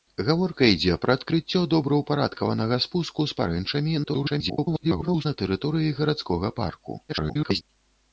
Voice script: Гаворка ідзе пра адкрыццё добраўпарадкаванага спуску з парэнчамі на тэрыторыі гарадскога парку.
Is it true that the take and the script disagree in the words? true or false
true